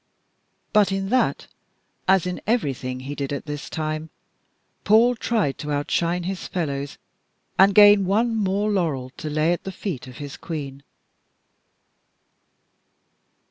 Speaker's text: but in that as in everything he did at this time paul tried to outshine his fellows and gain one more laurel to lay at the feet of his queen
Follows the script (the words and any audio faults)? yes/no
yes